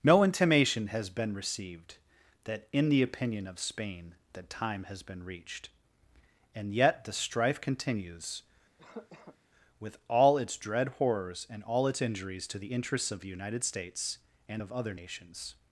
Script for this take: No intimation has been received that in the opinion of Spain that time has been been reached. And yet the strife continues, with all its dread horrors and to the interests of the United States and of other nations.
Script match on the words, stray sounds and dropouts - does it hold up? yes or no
no